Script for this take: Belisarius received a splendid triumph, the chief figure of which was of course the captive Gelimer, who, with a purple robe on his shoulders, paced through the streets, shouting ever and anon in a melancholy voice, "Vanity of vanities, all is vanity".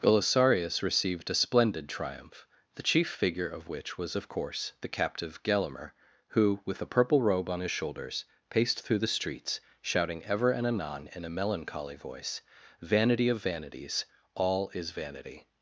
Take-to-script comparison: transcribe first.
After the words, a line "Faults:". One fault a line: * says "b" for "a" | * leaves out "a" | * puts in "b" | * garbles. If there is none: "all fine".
Belisarius received a splendid triumph, the chief figure of which was of course the captive Gelimer, who, with a purple robe on his shoulders, paced through the streets, shouting ever and anon in a melancholy voice, "Vanity of vanities, all is vanity".
Faults:
all fine